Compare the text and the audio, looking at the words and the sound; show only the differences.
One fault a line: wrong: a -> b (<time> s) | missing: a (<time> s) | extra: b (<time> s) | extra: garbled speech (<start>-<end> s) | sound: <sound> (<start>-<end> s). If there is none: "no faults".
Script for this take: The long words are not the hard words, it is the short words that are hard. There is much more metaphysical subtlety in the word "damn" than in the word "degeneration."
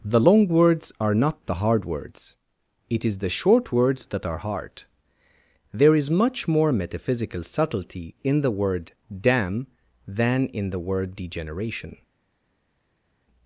no faults